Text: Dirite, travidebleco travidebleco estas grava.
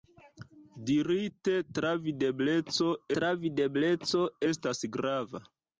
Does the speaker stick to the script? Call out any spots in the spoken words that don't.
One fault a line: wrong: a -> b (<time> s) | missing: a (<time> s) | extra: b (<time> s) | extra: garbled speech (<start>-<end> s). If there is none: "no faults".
no faults